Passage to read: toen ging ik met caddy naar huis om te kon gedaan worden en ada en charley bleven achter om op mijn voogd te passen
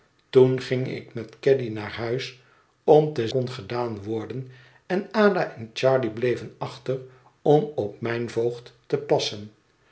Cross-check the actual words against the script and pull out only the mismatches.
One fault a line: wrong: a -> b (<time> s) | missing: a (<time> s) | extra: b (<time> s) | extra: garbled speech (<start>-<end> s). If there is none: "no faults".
no faults